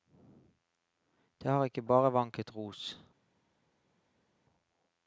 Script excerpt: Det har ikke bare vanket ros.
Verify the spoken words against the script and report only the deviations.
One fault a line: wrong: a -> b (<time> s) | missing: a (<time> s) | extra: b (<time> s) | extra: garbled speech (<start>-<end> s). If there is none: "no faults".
no faults